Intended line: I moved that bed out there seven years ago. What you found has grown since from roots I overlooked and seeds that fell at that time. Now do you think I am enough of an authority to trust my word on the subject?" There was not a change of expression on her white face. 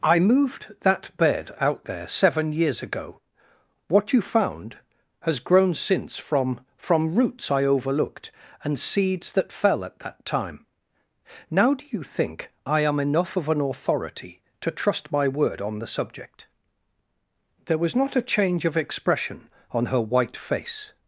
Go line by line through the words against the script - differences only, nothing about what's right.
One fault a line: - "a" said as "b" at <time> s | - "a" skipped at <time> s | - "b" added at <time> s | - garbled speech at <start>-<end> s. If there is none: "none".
- "from" added at 6.8 s